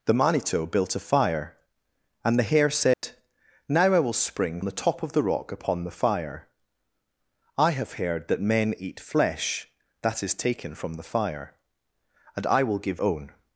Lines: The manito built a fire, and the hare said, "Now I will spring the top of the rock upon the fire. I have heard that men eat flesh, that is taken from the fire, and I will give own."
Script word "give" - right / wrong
right